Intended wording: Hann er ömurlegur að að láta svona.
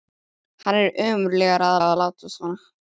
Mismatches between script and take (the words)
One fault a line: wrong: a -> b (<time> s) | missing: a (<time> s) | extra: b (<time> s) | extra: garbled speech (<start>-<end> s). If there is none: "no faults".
no faults